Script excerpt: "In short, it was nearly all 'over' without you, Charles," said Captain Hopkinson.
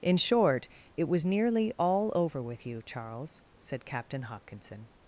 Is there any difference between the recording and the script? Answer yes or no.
yes